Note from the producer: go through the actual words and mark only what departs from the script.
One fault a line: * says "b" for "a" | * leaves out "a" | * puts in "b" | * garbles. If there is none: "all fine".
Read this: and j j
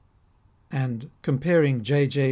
* puts in "comparing"